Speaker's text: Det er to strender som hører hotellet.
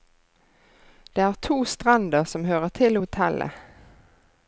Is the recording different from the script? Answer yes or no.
yes